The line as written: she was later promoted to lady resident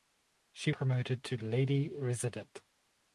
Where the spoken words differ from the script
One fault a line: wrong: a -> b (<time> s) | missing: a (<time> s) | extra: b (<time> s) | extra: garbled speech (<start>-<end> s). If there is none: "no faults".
missing: was later (0.7 s)